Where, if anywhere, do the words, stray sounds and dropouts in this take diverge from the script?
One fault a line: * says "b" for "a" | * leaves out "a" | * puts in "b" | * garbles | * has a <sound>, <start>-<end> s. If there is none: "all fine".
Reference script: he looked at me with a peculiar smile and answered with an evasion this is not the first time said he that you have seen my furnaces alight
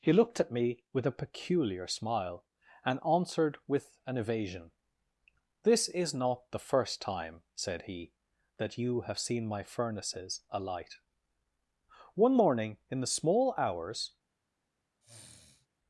* puts in "one morning in the small hours"
* has a sniff, 15.0-15.7 s